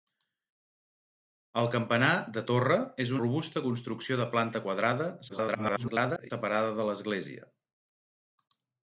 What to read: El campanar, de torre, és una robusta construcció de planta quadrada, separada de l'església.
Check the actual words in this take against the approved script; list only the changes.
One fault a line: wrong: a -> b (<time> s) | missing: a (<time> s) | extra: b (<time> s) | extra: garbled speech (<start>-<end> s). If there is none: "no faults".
missing: una (3.1 s)
extra: garbled speech (5.3-6.3 s)